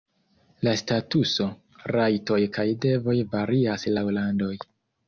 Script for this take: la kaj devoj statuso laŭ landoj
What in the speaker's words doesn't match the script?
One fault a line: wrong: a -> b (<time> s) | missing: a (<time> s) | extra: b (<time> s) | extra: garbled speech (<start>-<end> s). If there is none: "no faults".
extra: statuso rajtoj (0.8 s)
wrong: statuso -> varias (3.4 s)